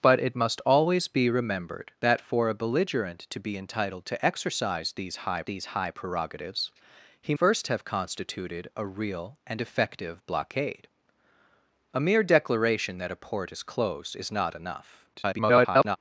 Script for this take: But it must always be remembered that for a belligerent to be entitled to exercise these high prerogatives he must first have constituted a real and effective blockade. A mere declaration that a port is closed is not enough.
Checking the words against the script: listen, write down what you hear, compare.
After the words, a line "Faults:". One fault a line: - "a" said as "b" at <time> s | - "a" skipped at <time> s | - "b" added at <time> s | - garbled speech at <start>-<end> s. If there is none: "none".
But it must always be remembered that for a belligerent to be entitled to exercise these high these high prerogatives he first have constituted a real and effective blockade. A mere declaration that a port is closed is not enough. [garbled]
Faults:
- "these high" added at 5.4 s
- "must" skipped at 7.3 s
- garbled speech at 15.1-16.0 s